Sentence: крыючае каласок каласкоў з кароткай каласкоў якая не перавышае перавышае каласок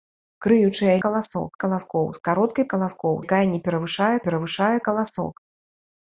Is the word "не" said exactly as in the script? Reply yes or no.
yes